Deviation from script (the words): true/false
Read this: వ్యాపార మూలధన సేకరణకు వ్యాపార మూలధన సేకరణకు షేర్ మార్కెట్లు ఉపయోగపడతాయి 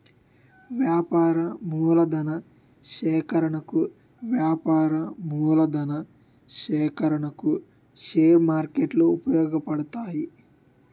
false